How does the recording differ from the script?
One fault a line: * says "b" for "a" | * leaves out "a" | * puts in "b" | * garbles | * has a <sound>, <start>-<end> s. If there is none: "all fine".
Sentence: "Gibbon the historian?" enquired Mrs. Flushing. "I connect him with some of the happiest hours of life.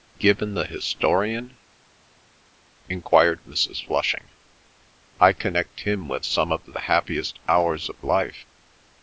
all fine